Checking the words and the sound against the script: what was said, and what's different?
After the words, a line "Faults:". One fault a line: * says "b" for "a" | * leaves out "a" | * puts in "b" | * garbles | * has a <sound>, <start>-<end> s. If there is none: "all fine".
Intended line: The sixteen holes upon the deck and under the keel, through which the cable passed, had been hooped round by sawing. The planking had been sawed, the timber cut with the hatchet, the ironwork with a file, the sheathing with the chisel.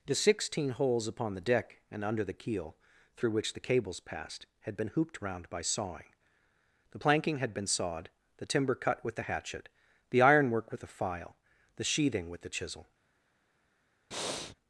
The sixteen holes upon the deck and under the keel, through which the cables passed, had been hooped round by sawing. The planking had been sawed, the timber cut with the hatchet, the ironwork with a file, the sheathing with the chisel.
Faults:
* says "cables" for "cable"
* has a breath, 14.1-14.6 s